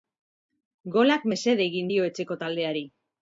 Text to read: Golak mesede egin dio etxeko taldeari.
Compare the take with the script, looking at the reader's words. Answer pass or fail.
pass